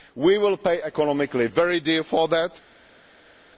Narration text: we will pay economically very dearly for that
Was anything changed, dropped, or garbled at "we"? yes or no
no